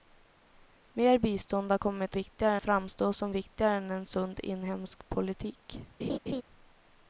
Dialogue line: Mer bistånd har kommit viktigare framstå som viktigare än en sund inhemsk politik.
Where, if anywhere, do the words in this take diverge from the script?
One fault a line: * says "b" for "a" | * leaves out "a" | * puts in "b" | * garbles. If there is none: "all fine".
all fine